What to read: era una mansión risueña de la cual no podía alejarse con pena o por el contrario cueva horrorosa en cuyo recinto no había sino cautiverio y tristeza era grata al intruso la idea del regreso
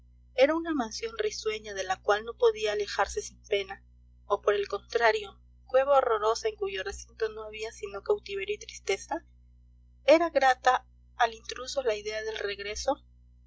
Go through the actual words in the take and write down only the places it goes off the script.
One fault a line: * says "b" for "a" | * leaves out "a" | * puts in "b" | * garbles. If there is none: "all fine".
* says "sin" for "con"